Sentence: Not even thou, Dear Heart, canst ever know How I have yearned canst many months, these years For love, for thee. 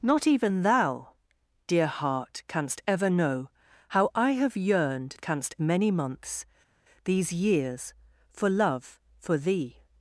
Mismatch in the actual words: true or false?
false